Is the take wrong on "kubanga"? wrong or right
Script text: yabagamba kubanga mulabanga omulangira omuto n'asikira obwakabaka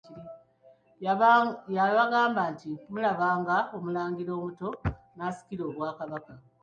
wrong